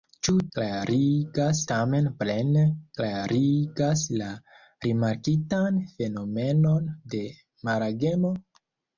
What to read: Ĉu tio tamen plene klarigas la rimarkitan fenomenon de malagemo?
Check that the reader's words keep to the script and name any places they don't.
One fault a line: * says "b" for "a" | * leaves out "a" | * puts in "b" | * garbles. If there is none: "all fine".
* says "klarigas" for "tio"